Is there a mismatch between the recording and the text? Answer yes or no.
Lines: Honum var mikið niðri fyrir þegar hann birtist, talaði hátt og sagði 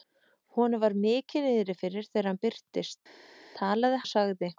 yes